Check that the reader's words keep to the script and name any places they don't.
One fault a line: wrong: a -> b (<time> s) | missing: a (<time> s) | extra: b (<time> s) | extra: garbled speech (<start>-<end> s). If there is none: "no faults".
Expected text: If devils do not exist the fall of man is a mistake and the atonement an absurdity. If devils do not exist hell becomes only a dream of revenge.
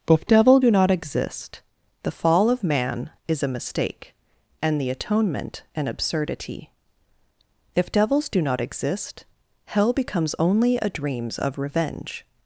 wrong: devils -> devil (0.2 s)
wrong: dream -> dreams (10.9 s)